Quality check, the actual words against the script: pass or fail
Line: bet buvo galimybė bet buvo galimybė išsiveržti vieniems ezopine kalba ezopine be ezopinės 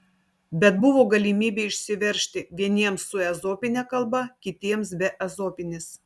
fail